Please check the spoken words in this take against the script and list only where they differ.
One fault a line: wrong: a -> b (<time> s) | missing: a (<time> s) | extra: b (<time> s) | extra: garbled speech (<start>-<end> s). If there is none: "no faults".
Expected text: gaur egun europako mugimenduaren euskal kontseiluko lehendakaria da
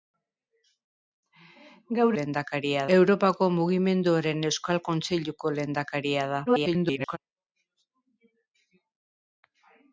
wrong: egun -> lehendakaria (2.2 s)
extra: garbled speech (6.5-7.2 s)